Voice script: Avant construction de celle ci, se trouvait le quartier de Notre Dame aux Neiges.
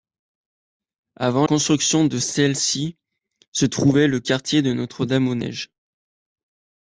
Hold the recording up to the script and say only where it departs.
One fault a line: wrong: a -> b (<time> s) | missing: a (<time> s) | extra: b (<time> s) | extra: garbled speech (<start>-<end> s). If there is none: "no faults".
no faults